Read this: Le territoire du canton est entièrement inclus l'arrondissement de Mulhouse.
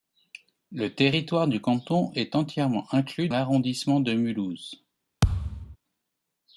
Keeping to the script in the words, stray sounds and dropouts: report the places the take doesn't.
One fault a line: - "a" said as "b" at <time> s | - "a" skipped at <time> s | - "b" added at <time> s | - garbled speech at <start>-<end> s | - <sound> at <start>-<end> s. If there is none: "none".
- thud at 5.2-5.8 s